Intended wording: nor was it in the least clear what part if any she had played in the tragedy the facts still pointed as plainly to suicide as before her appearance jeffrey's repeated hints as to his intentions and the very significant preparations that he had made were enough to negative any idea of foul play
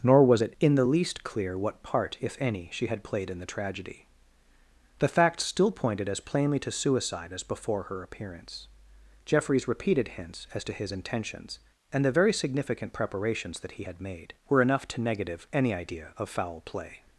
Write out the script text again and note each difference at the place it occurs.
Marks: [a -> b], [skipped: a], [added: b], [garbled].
nor was it in the least clear what part if any she had played in the tragedy the facts still pointed as plainly to suicide as before her appearance jeffrey's repeated hints as to his intentions and the very significant preparations that he had made were enough to negative any idea of foul play